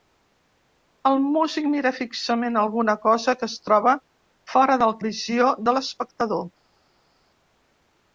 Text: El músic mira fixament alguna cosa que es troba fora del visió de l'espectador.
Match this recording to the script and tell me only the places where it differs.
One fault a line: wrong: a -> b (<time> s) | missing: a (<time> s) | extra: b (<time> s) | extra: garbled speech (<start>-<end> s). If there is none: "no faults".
no faults